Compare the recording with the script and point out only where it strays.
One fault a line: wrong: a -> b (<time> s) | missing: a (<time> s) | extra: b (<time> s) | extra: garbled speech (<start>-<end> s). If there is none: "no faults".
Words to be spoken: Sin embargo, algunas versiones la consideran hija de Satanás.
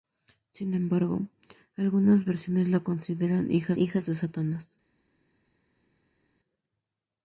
extra: hija (3.8 s)